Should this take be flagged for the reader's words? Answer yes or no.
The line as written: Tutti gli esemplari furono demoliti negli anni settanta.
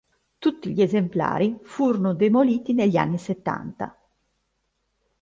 no